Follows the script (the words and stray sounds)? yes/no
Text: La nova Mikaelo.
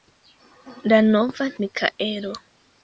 yes